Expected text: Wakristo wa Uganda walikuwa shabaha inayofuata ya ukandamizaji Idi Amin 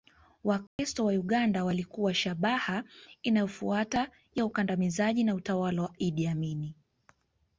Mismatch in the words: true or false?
true